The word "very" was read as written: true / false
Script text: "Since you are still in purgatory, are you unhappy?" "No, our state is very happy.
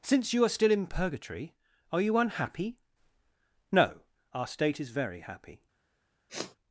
true